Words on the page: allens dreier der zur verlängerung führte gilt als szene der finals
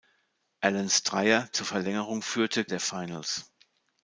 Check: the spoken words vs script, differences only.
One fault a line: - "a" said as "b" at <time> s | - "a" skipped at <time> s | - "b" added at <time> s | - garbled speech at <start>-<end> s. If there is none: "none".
- "der" skipped at 1.5 s
- "gilt als szene" skipped at 2.7 s